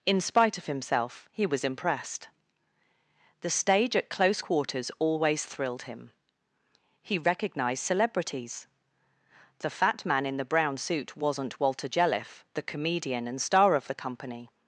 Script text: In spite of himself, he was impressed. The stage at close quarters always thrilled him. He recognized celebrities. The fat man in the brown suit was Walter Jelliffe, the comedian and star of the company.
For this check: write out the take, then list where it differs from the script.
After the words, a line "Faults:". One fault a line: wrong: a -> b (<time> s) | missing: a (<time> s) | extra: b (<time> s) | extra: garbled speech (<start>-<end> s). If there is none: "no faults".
In spite of himself, he was impressed. The stage at close quarters always thrilled him. He recognized celebrities. The fat man in the brown suit wasn't Walter Jelliffe, the comedian and star of the company.
Faults:
wrong: was -> wasn't (11.2 s)